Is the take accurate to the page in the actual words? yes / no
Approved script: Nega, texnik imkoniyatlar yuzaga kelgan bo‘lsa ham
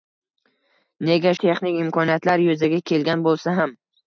yes